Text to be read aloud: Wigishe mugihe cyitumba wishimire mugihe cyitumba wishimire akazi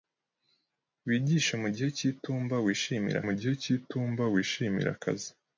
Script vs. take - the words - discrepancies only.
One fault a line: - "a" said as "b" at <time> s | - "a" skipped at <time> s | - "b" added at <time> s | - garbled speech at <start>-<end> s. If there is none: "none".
none